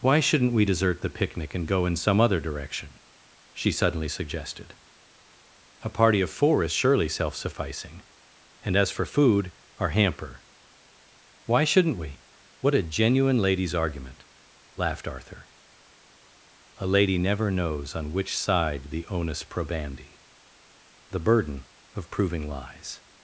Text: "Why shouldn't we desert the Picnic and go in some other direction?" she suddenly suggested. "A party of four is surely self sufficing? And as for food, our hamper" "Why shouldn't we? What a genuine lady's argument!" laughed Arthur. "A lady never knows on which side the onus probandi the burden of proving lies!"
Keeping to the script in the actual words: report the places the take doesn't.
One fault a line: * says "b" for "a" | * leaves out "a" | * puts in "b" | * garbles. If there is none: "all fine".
all fine